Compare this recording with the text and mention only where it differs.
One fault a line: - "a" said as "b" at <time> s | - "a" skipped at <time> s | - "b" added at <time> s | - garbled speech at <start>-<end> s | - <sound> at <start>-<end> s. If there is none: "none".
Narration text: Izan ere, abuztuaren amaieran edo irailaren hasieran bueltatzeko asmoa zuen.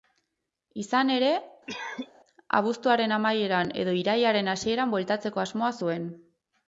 - cough at 1.7-2.1 s